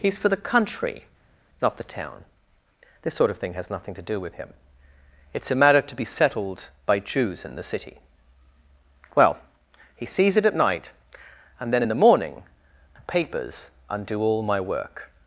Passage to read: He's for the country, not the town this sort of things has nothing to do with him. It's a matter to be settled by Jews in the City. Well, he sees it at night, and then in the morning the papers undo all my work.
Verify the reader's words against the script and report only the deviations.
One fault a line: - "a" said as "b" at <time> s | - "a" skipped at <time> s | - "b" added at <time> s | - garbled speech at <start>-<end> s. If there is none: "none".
- "things" said as "thing" at 3.4 s